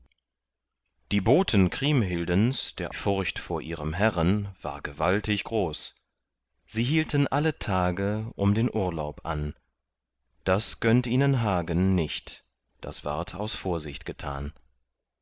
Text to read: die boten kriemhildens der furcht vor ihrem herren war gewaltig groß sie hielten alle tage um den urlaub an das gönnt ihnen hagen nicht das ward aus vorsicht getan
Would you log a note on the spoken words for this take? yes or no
no